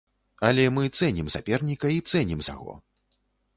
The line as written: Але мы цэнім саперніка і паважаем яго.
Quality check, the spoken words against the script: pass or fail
fail